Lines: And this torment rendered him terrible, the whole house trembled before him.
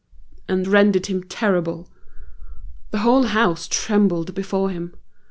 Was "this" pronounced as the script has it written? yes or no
no